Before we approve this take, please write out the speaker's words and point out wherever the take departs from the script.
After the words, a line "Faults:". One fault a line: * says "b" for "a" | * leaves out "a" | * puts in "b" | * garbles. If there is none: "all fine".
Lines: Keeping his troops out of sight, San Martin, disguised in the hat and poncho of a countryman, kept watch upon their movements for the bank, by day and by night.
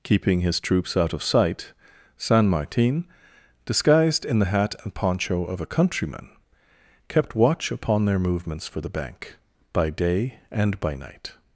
Keeping his troops out of sight, San Martin, disguised in the hat and poncho of a countryman, kept watch upon their movements for the bank, by day and by night.
Faults:
all fine